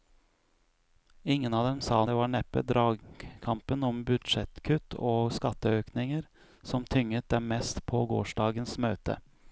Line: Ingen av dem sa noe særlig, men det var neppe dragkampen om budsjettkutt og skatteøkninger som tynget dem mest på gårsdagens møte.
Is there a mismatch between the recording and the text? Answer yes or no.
yes